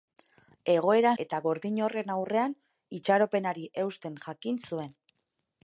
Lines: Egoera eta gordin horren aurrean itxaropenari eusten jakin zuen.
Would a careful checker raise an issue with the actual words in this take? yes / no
no